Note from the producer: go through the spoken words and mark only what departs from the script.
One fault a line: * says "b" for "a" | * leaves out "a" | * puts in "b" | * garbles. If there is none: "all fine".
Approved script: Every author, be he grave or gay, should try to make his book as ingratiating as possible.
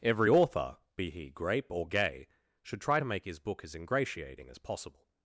* says "grape" for "grave"